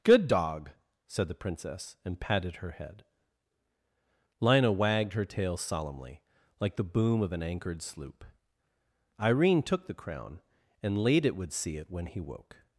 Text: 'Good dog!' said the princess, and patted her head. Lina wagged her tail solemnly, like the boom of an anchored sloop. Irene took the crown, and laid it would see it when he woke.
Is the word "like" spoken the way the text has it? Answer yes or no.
yes